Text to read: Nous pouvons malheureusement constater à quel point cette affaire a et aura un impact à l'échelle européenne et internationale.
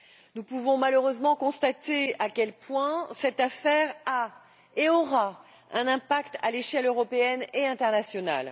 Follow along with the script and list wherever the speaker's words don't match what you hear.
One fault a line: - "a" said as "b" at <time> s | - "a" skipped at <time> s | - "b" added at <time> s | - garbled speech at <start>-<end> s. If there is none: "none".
none